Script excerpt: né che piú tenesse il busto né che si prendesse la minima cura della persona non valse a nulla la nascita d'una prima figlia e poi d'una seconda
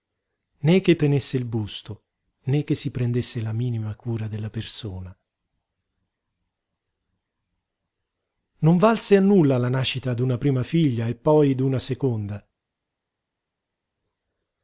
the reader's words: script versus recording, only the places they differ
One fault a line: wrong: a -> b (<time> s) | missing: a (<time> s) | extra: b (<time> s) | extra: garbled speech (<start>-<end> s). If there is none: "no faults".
missing: piú (0.9 s)